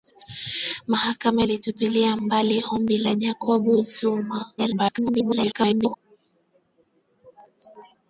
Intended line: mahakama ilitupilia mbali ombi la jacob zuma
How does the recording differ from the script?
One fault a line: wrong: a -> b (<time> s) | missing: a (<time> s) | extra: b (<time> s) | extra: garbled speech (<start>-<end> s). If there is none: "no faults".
extra: garbled speech (4.6-6.0 s)